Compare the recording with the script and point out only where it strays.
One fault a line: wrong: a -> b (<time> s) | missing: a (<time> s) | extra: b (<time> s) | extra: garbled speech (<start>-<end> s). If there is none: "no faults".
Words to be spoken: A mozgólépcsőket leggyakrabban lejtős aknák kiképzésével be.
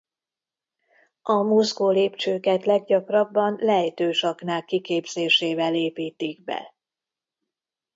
extra: építik (5.8 s)